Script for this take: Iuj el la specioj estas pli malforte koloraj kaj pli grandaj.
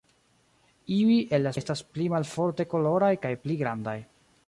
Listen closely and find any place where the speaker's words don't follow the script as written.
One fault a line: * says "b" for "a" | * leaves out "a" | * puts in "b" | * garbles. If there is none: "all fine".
* leaves out "specioj"